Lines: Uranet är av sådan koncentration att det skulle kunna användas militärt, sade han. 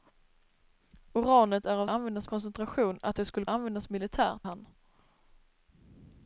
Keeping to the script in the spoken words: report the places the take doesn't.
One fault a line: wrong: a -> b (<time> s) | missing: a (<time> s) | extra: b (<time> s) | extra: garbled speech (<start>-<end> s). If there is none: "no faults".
wrong: sådan -> användas (1.9 s)
missing: kunna (3.5 s)
missing: sade (4.5 s)